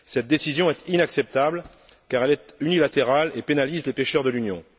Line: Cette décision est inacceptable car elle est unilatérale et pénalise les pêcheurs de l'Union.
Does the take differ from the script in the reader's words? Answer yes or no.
no